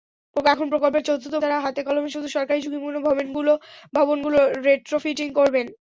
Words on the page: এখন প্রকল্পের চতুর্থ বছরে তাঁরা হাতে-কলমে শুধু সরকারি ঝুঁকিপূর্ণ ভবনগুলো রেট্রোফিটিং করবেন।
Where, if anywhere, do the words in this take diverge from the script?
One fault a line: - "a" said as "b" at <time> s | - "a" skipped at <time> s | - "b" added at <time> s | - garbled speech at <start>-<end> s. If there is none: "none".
- "বছরে" skipped at 1.3 s